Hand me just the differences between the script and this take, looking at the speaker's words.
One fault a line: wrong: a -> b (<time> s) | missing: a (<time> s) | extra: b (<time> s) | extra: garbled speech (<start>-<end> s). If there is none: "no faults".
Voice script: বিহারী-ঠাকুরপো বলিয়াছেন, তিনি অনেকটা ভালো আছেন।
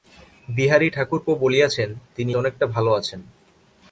no faults